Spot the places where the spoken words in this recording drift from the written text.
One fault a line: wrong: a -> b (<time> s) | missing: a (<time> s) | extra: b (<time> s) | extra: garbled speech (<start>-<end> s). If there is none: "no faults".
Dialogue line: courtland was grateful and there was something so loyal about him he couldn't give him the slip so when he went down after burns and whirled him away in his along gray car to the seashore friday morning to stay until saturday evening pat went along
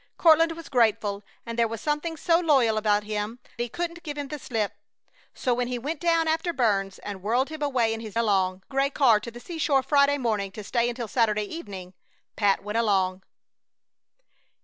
no faults